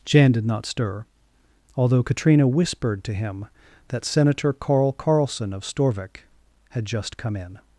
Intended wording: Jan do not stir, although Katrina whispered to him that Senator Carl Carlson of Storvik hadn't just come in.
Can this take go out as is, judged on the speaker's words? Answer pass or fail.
fail